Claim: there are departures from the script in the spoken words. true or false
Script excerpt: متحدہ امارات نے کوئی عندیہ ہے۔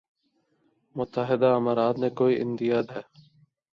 false